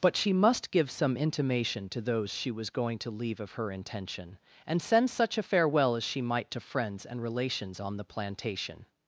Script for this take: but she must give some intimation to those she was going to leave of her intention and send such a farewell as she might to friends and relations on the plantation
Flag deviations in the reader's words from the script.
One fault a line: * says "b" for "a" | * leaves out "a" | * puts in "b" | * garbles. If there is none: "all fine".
all fine